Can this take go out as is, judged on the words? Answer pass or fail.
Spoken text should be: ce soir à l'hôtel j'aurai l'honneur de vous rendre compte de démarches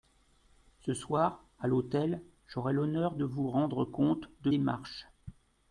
pass